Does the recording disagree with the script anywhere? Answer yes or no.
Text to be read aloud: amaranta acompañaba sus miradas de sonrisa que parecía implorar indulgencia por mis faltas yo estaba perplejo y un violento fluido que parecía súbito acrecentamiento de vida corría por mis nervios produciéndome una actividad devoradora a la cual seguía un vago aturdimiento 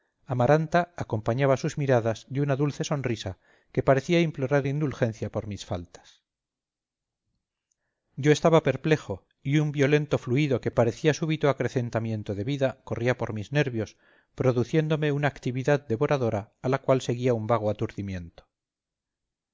yes